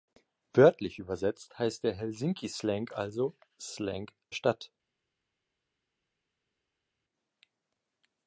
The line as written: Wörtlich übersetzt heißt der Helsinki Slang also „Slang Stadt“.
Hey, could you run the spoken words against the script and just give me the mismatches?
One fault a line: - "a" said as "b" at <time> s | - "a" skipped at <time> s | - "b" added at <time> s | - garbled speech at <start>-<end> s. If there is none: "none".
none